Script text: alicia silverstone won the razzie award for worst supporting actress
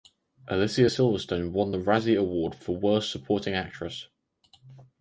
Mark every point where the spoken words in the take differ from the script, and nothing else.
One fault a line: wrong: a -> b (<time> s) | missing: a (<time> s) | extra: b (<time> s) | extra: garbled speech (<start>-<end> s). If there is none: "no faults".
no faults